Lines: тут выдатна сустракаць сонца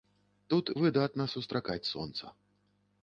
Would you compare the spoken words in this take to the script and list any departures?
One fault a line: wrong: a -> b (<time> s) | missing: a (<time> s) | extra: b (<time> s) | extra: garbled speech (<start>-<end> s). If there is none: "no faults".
no faults